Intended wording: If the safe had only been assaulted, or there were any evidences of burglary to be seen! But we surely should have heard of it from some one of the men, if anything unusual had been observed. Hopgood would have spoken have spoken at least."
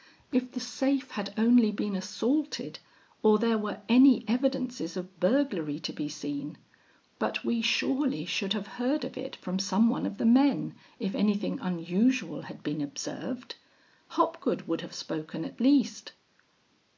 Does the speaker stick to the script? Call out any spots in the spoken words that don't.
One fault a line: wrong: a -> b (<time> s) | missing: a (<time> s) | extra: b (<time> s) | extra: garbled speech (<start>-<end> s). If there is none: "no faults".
missing: have spoken (15.4 s)